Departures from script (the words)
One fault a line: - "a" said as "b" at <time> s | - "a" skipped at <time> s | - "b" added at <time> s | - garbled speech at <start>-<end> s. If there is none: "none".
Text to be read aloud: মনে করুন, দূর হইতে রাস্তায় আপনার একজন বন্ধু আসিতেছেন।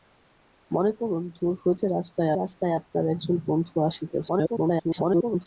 - "রাস্তায়" added at 2.3 s
- garbled speech at 4.3-5.5 s